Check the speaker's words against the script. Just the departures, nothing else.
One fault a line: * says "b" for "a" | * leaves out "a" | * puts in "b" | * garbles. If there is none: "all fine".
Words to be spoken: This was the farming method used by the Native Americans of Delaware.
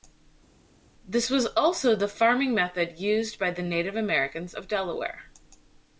* puts in "also"